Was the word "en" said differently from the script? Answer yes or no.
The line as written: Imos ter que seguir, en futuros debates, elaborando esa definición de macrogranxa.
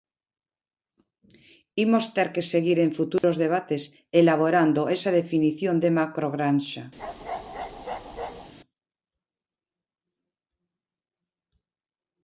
no